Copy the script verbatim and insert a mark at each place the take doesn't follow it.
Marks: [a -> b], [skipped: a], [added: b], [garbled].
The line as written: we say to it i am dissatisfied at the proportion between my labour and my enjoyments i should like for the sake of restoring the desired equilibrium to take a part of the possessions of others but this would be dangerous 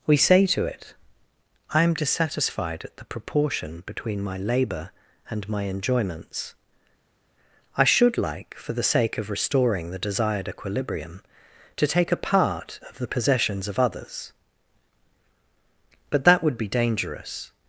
we say to it i am dissatisfied at the proportion between my labour and my enjoyments i should like for the sake of restoring the desired equilibrium to take a part of the possessions of others but [this -> that] would be dangerous